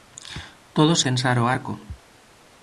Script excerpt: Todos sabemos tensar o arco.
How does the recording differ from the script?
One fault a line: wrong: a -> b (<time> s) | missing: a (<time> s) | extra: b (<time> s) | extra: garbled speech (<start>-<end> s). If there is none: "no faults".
missing: sabemos (1.0 s)